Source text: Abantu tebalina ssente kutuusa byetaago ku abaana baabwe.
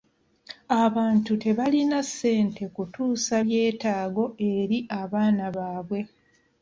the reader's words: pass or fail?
fail